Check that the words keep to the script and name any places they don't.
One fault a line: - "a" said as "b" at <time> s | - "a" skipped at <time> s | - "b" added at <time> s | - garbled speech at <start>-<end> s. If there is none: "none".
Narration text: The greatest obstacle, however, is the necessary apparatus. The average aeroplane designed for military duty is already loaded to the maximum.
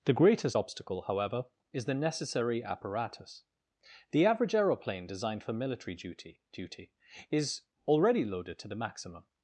- "duty" added at 6.5 s